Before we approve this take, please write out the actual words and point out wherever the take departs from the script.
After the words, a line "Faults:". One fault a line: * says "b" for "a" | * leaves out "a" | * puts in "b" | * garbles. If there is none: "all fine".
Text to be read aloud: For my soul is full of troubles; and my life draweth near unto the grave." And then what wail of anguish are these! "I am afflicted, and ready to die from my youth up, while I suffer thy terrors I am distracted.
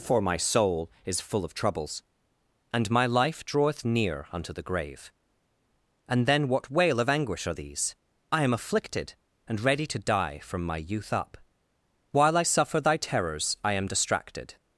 For my soul is full of troubles; and my life draweth near unto the grave." And then what wail of anguish are these! "I am afflicted, and ready to die from my youth up, while I suffer thy terrors I am distracted.
Faults:
all fine